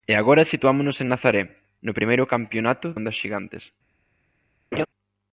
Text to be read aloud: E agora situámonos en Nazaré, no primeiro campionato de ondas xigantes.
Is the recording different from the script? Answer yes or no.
yes